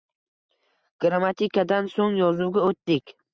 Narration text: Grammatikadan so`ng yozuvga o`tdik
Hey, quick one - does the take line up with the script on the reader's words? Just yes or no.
yes